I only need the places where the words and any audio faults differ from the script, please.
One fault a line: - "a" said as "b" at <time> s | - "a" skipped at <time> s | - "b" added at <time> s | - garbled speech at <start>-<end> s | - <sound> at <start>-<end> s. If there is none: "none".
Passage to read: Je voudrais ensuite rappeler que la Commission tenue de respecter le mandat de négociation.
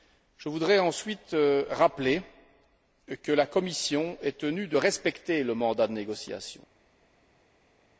- "est" added at 4.2 s